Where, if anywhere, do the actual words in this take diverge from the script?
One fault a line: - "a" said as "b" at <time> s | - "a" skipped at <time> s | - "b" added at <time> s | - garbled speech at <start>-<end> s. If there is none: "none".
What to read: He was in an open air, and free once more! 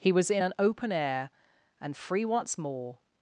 none